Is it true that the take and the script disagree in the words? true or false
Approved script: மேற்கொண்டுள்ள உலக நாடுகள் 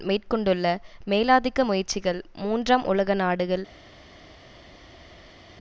true